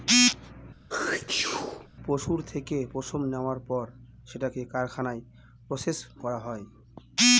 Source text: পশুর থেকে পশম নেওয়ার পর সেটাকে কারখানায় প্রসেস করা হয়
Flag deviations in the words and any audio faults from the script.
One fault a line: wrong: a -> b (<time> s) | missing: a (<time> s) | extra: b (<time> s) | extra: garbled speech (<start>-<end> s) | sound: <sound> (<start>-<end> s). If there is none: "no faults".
sound: sneeze (0.9-1.9 s)